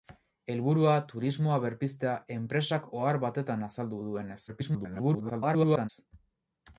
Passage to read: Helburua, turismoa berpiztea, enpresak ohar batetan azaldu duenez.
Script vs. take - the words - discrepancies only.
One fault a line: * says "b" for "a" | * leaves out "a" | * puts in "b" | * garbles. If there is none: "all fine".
* garbles